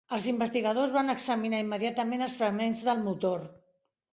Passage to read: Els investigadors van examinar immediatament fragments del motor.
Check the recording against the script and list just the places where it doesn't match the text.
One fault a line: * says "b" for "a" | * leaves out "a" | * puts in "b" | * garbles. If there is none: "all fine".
* puts in "els"